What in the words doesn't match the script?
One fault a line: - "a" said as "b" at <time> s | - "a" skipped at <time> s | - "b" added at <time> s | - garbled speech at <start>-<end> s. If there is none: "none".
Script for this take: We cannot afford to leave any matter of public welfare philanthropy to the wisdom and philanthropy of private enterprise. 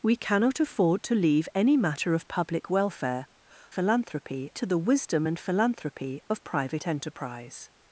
none